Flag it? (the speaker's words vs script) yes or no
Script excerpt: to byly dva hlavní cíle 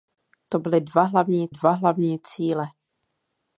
yes